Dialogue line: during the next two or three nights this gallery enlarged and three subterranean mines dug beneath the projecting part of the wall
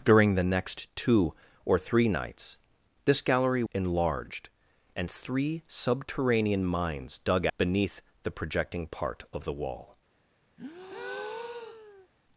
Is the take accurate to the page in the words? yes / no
yes